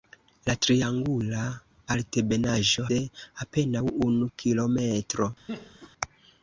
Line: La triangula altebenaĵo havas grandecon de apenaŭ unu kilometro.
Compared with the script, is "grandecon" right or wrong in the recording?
wrong